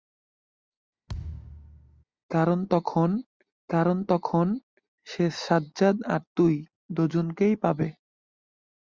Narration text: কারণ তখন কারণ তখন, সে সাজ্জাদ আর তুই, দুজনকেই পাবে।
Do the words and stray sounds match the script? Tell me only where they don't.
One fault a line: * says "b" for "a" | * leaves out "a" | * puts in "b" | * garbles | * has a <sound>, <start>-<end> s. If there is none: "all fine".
* has a thud, 1.1-2.0 s